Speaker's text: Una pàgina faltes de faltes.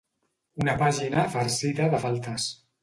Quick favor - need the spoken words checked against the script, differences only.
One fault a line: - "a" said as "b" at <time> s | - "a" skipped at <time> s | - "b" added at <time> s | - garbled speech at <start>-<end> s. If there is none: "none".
- "faltes" said as "farcida" at 1.3 s